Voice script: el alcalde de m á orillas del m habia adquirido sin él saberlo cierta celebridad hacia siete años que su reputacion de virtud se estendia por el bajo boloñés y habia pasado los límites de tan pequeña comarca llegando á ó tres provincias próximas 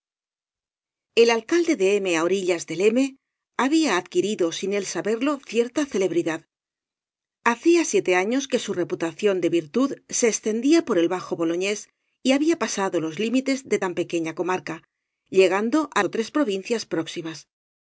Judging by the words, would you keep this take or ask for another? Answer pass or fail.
pass